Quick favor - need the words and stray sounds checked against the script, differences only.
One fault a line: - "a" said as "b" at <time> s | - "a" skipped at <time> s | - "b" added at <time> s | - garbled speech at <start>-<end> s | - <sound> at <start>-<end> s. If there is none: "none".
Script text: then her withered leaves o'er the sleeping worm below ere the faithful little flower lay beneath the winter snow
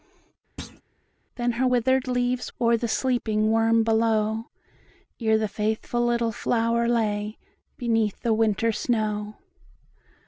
- thud at 0.6-0.8 s